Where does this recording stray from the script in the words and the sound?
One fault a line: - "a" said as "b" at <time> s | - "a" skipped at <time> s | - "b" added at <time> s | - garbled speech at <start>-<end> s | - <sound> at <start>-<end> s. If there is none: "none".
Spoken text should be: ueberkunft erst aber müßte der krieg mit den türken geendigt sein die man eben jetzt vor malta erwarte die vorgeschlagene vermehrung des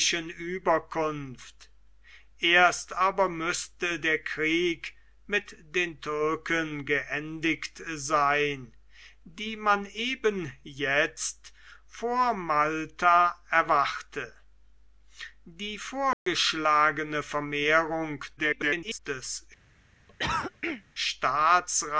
- dropout at 16.1-16.3 s
- garbled speech at 18.4-19.0 s
- cough at 20.1-20.8 s